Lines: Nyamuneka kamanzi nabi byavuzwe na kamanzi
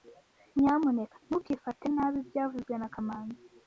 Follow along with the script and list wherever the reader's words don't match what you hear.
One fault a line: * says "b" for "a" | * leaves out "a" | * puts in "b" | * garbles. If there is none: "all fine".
* says "ntukifate" for "kamanzi"